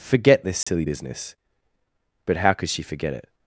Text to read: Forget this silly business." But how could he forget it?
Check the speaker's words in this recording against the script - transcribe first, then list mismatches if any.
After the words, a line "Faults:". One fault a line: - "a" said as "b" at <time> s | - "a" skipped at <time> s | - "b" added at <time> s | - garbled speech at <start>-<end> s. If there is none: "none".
Forget this silly business." But how could she forget it?
Faults:
- "he" said as "she" at 2.7 s